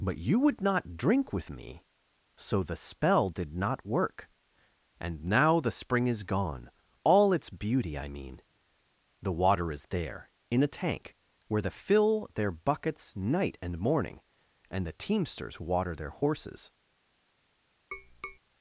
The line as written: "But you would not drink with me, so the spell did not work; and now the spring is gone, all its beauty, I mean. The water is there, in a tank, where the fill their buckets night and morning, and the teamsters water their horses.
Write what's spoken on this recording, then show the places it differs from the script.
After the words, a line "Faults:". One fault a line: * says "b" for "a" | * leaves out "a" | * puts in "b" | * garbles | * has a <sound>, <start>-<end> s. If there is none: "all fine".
"But you would not drink with me, so the spell did not work; and now the spring is gone, all its beauty, I mean. The water is there, in a tank, where the fill their buckets night and morning, and the teamsters water their horses.
Faults:
* has a tap, 17.9-18.4 s